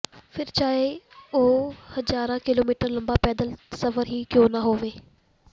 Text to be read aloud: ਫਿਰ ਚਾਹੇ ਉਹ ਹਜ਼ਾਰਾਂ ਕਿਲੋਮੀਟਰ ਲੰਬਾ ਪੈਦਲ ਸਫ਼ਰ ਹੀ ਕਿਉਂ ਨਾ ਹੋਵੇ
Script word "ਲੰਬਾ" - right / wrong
right